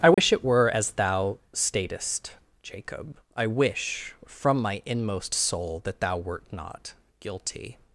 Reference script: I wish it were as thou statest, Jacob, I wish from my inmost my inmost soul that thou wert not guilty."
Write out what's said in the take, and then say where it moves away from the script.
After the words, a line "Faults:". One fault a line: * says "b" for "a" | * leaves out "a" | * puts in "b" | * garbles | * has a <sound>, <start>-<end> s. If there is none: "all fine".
I wish it were as thou statest, Jacob, I wish from my inmost soul that thou wert not guilty."
Faults:
* has a dropout, 0.1-0.2 s
* leaves out "my inmost"